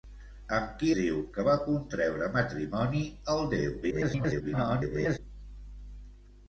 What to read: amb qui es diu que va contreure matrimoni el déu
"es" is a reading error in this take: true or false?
true